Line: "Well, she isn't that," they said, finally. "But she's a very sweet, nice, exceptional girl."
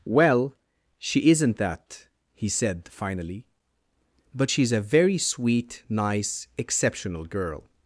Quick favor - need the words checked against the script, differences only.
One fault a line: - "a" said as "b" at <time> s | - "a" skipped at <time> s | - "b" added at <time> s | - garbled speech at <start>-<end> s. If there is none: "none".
- "they" said as "he" at 2.3 s